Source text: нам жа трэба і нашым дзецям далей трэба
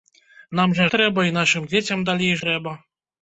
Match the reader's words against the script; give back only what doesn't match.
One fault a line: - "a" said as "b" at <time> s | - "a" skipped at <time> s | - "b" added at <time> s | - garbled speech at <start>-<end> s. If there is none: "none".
none